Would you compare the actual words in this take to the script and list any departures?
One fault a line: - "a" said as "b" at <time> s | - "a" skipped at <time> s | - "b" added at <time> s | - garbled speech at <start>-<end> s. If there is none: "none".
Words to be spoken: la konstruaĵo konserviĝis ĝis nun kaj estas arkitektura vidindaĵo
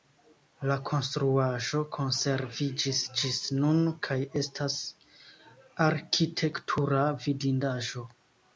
none